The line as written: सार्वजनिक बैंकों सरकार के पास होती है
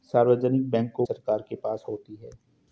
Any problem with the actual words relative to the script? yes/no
no